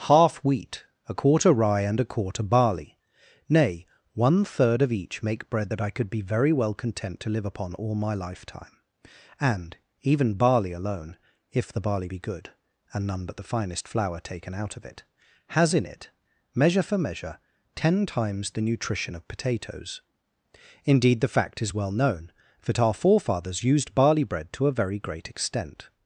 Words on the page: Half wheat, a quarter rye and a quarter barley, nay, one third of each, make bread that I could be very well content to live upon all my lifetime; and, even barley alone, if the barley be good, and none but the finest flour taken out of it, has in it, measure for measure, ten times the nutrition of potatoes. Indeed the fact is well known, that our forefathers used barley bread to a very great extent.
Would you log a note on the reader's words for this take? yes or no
no